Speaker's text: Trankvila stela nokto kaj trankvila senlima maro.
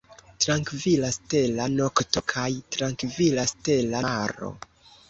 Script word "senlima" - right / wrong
wrong